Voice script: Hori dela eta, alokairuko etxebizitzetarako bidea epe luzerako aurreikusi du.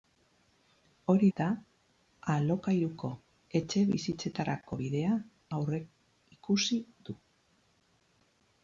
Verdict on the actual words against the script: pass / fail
fail